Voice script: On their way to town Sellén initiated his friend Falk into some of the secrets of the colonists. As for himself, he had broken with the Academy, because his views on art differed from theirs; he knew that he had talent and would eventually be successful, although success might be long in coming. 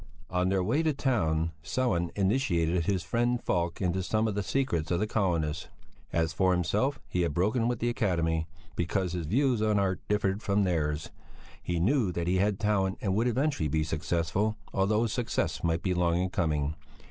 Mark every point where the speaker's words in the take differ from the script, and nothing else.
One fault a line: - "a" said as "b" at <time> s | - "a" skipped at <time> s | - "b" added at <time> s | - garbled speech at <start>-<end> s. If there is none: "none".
none